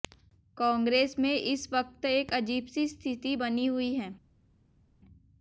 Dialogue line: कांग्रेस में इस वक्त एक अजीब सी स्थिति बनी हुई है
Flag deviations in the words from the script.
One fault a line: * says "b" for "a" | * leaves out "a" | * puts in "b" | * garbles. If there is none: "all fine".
all fine